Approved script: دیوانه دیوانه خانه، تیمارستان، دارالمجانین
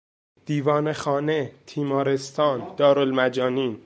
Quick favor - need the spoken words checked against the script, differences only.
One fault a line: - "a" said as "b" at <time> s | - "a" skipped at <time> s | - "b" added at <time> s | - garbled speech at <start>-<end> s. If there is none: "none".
- "دیوانه" skipped at 0.9 s